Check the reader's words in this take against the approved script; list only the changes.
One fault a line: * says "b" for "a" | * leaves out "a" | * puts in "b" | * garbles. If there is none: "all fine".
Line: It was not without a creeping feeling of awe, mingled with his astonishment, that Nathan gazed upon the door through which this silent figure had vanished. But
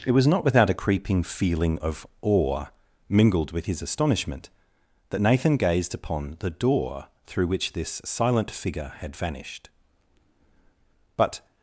all fine